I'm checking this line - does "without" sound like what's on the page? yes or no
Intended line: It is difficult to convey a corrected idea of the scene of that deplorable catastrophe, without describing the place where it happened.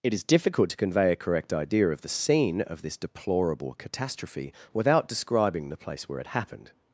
yes